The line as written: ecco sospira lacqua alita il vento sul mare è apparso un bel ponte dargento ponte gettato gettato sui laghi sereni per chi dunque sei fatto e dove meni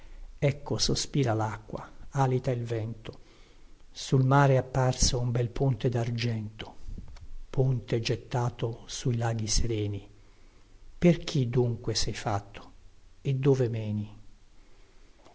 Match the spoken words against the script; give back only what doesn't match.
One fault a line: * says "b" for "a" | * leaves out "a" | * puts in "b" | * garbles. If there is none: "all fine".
* leaves out "gettato"